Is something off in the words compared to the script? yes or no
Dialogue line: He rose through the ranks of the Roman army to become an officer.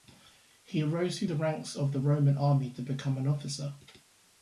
no